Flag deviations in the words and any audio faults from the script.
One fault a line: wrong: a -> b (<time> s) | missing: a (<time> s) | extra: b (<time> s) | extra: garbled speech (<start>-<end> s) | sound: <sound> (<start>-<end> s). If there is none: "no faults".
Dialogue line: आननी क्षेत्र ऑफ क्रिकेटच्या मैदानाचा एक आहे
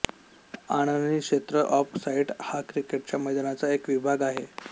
extra: साईड हा (2.0 s)
extra: विभाग (3.9 s)